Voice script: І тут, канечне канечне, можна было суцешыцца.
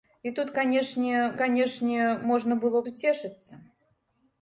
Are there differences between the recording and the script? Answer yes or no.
no